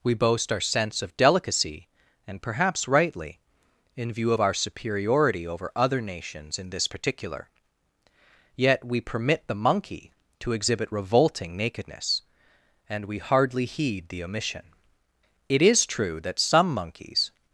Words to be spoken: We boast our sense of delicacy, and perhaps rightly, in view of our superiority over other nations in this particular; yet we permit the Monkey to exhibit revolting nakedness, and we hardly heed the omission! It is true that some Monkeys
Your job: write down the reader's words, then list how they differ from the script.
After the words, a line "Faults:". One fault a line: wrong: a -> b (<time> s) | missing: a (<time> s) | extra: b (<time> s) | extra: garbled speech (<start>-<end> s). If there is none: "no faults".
We boast our sense of delicacy, and perhaps rightly, in view of our superiority over other nations in this particular; yet we permit the Monkey to exhibit revolting nakedness, and we hardly heed the omission! It is true that some Monkeys
Faults:
no faults